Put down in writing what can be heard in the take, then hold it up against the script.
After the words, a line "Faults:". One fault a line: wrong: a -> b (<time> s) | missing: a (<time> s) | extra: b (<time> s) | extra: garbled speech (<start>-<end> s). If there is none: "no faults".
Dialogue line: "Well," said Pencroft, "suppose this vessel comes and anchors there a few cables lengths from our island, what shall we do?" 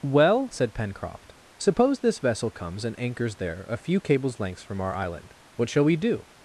"Well," said Pencroft, "suppose this vessel comes and anchors there a few cables lengths from our island, what shall we do?"
Faults:
no faults